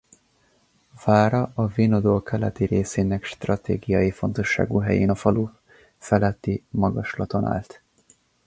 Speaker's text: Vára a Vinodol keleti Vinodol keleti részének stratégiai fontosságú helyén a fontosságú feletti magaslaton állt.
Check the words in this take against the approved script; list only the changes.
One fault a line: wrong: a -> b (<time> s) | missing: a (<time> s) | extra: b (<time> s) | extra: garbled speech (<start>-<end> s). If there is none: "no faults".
missing: Vinodol keleti (2.6 s)
wrong: fontosságú -> falu (5.1 s)